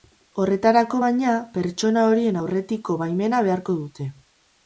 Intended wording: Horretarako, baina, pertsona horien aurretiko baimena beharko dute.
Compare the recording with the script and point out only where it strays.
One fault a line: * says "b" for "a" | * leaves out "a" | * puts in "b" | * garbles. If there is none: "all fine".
all fine